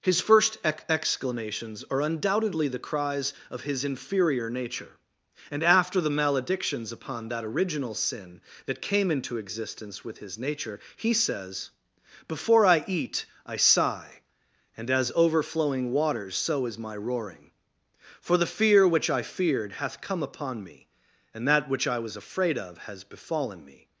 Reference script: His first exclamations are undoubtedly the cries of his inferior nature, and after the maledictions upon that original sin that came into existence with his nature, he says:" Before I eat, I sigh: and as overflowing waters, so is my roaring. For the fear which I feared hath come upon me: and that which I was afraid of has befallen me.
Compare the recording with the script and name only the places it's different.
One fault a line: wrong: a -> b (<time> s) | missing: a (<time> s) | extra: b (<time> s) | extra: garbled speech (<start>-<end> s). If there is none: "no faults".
extra: ex (0.6 s)